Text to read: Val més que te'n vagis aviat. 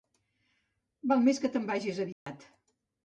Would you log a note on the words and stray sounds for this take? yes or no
yes